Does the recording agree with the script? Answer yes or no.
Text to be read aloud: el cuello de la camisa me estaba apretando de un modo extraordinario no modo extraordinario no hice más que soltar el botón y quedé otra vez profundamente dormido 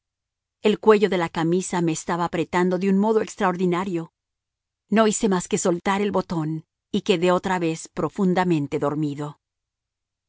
no